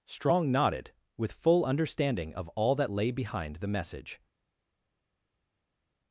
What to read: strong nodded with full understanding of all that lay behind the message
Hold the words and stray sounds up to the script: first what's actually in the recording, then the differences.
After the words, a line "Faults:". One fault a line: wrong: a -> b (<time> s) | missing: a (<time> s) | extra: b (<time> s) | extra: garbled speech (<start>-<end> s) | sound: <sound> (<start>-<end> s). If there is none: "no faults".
strong nodded with full understanding of all that lay behind the message
Faults:
no faults